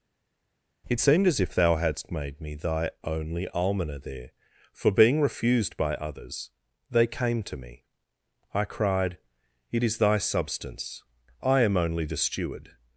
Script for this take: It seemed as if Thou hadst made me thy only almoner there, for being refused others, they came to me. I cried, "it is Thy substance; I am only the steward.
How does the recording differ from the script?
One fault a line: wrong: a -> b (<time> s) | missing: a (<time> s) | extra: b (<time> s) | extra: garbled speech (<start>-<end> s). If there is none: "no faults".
extra: by (5.8 s)